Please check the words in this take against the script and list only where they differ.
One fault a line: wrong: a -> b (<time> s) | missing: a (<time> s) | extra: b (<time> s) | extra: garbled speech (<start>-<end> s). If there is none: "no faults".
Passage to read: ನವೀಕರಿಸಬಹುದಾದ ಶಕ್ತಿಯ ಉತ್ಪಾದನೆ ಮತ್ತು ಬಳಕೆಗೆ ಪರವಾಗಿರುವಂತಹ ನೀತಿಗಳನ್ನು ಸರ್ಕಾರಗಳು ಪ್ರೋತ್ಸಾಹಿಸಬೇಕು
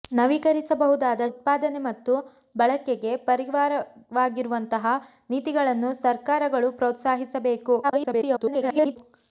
missing: ಶಕ್ತಿಯ (1.2 s)
extra: garbled speech (7.8-9.0 s)